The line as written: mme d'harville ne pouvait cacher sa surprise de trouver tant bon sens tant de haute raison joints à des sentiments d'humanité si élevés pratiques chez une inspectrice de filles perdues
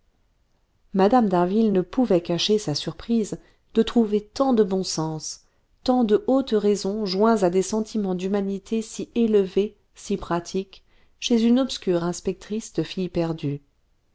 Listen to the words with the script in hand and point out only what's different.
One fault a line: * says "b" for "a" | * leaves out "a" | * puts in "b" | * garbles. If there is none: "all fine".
* puts in "de"
* puts in "si"
* puts in "obscure"